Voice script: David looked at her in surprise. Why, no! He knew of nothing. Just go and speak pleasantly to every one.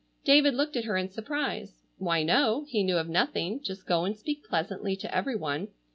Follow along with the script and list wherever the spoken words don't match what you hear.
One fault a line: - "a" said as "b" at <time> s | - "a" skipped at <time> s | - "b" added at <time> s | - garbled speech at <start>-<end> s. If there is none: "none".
none